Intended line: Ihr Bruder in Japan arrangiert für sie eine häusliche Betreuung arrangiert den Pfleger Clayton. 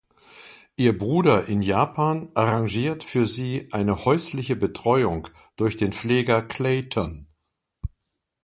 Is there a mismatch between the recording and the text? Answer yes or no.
yes